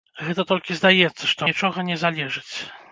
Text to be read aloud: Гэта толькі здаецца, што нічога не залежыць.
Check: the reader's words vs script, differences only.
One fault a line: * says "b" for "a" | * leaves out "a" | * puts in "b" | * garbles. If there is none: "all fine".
all fine